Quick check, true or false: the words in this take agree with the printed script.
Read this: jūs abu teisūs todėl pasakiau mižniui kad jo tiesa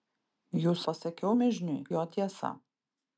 false